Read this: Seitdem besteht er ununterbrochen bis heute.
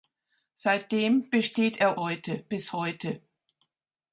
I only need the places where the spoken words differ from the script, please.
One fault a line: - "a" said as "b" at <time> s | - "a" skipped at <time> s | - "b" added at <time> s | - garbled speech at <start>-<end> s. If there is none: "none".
- "ununterbrochen" said as "heute" at 2.0 s